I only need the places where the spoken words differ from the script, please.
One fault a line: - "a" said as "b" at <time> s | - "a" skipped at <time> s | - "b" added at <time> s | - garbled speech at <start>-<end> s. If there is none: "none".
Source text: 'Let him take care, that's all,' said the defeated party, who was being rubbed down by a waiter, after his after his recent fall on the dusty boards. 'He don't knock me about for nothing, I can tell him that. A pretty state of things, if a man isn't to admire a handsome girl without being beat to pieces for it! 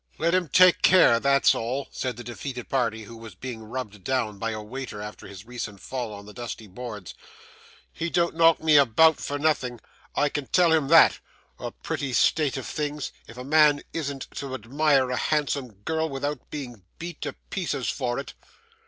- "after his" skipped at 5.5 s